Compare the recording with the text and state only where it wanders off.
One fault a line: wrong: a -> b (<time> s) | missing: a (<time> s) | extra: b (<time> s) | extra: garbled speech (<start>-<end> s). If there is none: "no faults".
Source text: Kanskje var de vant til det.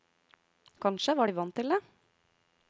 no faults